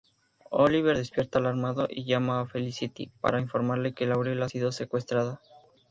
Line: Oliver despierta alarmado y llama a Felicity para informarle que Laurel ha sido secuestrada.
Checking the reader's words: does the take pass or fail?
pass